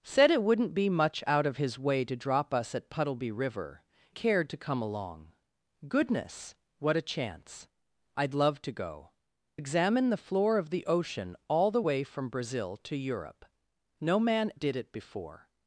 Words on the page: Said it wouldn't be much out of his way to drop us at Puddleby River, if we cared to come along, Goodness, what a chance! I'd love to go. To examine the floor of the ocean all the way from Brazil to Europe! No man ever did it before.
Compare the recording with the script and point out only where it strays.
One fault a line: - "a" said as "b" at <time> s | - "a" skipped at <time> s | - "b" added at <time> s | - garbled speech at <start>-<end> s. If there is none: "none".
- "if we" skipped at 3.8 s
- "To" skipped at 9.1 s
- "ever" skipped at 14.5 s